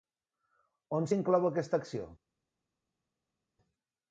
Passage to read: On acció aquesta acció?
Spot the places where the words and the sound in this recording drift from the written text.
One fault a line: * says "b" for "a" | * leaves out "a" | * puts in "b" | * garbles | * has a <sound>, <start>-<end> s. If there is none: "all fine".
* says "s'inclou" for "acció"